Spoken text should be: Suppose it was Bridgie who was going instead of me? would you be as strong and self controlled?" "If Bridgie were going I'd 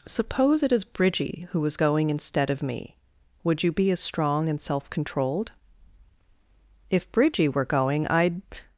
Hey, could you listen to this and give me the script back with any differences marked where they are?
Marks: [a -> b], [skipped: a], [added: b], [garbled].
Suppose it [was -> is] Bridgie who was going instead of me? would you be as strong and self controlled?" "If Bridgie were going I'd